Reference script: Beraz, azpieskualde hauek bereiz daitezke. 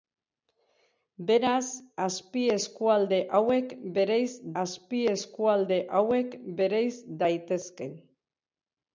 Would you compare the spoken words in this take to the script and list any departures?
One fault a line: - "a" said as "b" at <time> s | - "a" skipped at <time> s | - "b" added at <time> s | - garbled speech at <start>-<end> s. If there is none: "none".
- "azpieskualde hauek bereiz" added at 4.6 s